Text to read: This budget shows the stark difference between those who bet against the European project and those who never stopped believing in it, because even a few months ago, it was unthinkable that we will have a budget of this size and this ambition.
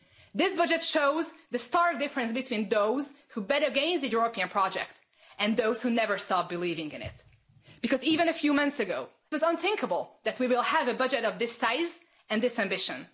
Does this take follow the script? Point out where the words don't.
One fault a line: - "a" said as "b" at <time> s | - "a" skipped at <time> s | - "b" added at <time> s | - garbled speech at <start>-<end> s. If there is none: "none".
- "it" skipped at 9.1 s